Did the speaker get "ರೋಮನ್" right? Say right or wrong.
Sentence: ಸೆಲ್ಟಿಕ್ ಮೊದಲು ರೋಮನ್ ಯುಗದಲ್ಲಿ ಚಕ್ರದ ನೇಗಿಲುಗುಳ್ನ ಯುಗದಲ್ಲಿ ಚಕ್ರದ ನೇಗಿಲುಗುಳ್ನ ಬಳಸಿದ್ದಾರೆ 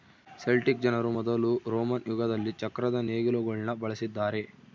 right